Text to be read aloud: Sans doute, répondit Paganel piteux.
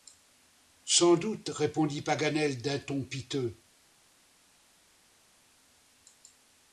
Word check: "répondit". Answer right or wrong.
right